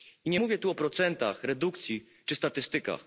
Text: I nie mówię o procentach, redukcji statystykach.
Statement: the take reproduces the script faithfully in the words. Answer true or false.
false